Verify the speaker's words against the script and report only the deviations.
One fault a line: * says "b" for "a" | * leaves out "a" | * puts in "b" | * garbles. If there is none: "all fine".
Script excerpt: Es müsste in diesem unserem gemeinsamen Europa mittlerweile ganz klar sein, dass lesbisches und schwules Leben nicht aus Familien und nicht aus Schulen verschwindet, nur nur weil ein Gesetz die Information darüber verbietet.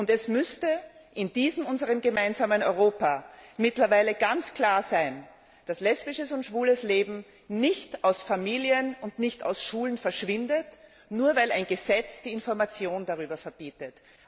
* leaves out "nur"